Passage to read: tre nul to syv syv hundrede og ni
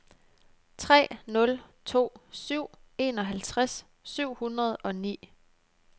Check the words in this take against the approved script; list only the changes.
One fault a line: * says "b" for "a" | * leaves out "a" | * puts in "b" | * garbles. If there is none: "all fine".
* puts in "enoghalvtreds"